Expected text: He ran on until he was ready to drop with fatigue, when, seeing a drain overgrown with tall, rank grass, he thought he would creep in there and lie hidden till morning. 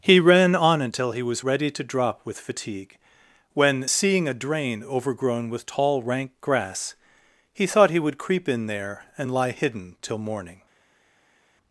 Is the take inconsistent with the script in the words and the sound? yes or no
no